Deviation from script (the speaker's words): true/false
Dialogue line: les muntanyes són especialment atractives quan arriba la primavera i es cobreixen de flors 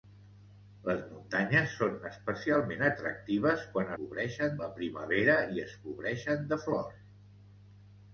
true